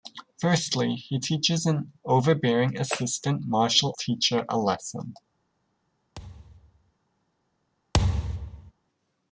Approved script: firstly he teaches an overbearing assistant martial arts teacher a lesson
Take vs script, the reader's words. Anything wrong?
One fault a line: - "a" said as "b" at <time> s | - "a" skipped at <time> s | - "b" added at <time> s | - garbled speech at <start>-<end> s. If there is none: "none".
- "arts" skipped at 3.9 s